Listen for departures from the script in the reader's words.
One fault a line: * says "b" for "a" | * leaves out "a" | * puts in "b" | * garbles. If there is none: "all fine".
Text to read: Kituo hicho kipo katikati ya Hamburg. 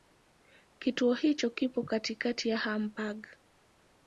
all fine